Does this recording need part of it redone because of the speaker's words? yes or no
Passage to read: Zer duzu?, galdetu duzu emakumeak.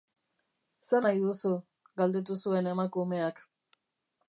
yes